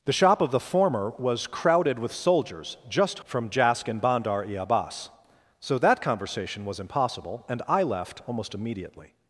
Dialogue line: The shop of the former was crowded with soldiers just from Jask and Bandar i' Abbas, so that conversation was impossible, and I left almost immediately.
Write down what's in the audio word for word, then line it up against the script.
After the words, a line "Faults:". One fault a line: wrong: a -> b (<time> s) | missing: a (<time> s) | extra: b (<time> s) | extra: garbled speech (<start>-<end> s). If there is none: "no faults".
The shop of the former was crowded with soldiers just from Jask and Bandar i' Abbas, so that conversation was impossible, and I left almost immediately.
Faults:
no faults